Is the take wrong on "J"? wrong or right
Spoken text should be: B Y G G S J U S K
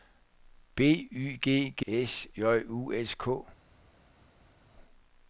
right